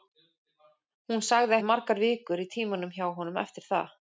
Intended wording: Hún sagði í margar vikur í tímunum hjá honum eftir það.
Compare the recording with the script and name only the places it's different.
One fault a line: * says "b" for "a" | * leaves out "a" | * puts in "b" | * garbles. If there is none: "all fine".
all fine